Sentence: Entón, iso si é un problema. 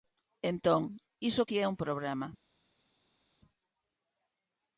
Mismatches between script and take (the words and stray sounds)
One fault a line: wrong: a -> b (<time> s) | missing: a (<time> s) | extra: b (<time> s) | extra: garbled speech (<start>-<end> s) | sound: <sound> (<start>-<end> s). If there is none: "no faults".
no faults